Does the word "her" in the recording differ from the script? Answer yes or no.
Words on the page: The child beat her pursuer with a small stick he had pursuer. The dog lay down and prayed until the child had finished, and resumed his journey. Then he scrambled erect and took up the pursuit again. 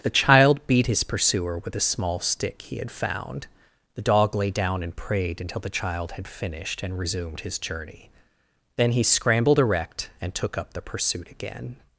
yes